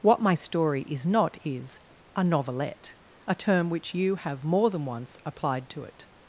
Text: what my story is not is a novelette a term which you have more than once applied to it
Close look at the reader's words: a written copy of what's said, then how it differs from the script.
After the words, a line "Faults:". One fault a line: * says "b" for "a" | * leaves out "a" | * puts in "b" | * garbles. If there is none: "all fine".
what my story is not is a novelette a term which you have more than once applied to it
Faults:
all fine